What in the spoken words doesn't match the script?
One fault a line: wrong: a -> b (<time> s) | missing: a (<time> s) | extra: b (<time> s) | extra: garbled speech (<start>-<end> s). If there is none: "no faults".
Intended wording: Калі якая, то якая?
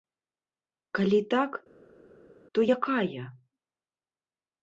wrong: якая -> так (1.3 s)